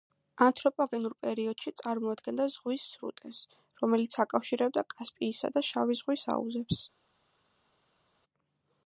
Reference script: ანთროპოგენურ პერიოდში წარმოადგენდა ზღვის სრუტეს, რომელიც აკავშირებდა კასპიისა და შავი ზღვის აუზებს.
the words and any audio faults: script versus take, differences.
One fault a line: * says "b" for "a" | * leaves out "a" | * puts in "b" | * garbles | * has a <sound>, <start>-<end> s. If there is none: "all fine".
all fine